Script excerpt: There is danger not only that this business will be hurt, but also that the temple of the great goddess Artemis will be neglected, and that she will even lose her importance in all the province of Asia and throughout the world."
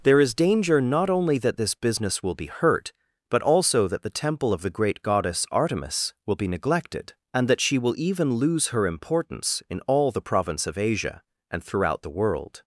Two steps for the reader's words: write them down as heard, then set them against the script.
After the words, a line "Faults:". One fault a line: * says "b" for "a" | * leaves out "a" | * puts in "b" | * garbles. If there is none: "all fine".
There is danger not only that this business will be hurt, but also that the temple of the great goddess Artemis will be neglected, and that she will even lose her importance in all the province of Asia and throughout the world."
Faults:
all fine